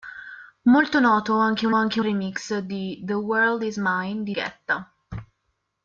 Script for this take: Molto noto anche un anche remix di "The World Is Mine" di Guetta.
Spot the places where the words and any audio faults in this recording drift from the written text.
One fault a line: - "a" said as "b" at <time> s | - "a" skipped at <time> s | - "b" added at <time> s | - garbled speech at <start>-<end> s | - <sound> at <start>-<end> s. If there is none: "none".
none